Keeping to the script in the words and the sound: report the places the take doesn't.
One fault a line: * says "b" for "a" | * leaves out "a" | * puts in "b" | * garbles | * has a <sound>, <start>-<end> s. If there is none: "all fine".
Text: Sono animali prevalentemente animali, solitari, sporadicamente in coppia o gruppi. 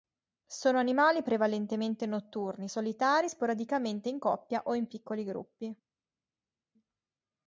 * says "notturni" for "animali"
* puts in "in piccoli"